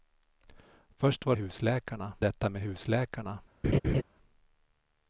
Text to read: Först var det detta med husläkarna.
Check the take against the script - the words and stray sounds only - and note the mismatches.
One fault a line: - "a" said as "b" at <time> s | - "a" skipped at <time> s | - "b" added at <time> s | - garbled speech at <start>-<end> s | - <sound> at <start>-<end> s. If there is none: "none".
- "det" said as "husläkarna" at 1.4 s
- laugh at 3.6-4.0 s